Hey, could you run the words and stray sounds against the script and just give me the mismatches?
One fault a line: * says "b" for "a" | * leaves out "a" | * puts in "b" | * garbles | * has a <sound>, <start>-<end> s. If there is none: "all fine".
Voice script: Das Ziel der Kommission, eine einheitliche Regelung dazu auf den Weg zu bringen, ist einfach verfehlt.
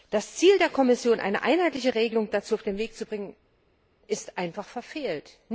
all fine